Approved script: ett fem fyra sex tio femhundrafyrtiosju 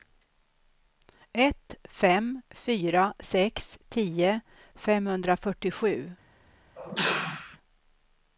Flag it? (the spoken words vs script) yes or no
no